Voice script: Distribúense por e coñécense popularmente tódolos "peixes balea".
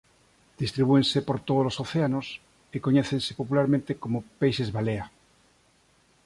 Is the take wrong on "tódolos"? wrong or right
wrong